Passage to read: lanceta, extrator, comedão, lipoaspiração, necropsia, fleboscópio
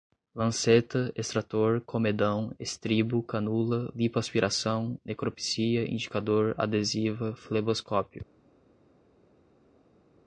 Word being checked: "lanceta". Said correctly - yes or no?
yes